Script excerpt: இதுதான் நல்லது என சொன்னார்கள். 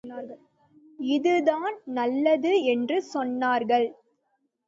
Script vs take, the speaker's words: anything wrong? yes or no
yes